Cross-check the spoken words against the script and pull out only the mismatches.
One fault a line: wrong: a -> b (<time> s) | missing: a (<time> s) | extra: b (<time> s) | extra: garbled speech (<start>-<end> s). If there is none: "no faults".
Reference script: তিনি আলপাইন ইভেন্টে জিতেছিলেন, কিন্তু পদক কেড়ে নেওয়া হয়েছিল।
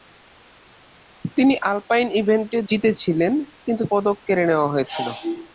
no faults